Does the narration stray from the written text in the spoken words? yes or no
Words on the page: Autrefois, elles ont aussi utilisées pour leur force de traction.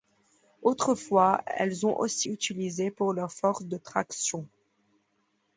no